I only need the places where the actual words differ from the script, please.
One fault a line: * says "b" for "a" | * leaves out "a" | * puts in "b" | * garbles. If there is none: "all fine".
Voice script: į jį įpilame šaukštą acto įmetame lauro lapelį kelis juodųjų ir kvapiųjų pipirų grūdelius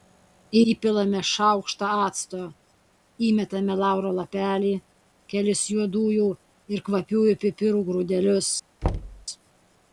* leaves out "jį"